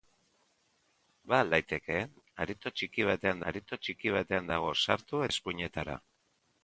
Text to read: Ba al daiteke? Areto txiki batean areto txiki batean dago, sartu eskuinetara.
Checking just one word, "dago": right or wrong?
right